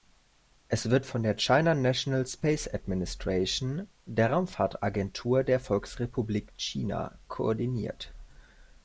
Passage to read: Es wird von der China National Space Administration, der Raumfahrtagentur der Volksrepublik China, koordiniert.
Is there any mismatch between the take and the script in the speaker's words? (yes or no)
no